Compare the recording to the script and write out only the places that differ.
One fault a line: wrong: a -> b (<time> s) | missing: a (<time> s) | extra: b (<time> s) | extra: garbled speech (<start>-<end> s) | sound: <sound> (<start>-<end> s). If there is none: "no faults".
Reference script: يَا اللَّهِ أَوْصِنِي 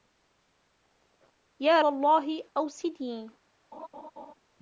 sound: laugh (3.7-4.3 s)